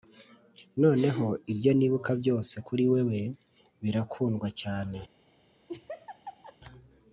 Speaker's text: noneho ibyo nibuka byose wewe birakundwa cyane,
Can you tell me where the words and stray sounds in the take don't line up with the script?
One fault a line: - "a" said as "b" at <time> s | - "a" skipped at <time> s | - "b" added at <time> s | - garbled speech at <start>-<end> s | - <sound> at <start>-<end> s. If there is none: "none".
- "kuri" added at 2.7 s
- laugh at 5.7-6.6 s